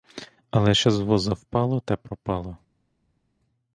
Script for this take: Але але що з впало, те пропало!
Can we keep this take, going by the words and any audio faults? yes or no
no